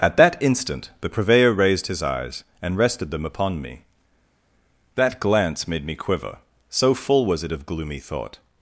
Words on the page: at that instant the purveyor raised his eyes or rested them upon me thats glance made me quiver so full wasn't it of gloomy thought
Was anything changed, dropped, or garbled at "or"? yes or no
yes